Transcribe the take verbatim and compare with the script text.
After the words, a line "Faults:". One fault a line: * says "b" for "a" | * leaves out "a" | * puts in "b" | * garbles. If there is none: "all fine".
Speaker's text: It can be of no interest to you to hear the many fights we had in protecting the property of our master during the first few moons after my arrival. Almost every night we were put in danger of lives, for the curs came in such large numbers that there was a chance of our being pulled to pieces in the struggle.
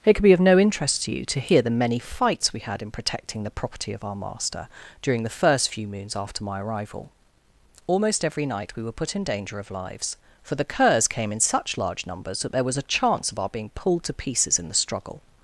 It could be of no interest to you to hear the many fights we had in protecting the property of our master during the first few moons after my arrival. Almost every night we were put in danger of lives, for the curs came in such large numbers that there was a chance of our being pulled to pieces in the struggle.
Faults:
* says "could" for "can"